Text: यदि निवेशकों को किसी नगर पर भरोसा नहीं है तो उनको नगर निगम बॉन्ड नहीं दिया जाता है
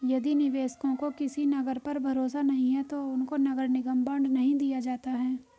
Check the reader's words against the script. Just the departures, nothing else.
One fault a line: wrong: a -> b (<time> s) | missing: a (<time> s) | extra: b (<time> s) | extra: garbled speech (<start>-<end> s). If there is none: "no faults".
no faults